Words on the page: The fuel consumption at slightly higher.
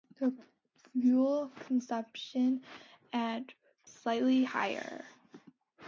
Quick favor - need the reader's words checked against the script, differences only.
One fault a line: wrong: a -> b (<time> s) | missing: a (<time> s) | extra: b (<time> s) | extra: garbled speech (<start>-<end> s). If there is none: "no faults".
no faults